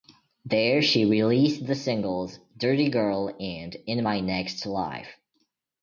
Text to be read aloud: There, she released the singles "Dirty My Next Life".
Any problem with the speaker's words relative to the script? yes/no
yes